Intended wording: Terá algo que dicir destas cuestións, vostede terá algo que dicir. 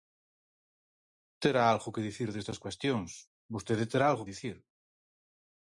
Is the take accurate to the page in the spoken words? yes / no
no